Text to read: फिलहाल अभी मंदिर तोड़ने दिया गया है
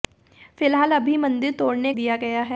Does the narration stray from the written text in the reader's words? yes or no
no